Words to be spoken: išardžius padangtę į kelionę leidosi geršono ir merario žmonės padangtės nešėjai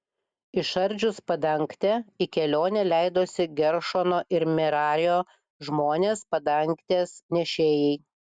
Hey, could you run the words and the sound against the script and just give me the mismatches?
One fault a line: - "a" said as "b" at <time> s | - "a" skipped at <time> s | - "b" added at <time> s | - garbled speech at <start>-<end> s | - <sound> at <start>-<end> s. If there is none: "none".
none